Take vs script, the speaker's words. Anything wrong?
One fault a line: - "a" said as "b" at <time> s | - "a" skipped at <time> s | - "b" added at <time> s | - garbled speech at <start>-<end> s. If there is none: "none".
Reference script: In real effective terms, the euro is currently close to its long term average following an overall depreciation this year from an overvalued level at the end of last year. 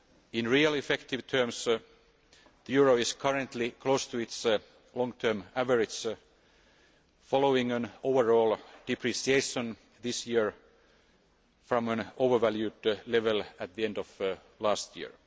none